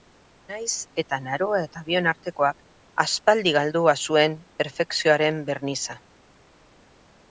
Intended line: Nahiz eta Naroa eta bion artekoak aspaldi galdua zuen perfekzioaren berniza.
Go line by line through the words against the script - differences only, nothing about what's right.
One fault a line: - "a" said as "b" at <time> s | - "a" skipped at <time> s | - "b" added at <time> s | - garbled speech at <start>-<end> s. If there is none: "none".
none